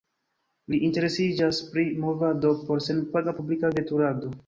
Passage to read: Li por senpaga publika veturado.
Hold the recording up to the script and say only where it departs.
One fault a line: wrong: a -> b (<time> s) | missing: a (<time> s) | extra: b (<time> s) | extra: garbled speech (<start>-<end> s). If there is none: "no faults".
extra: interesiĝas pri Movado (0.9 s)